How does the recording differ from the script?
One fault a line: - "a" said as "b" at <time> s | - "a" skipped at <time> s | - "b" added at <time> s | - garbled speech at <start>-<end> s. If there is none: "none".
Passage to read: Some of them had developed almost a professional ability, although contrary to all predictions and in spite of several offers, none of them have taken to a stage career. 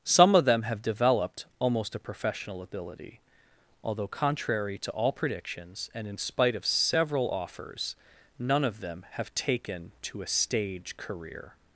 - "had" said as "have" at 0.6 s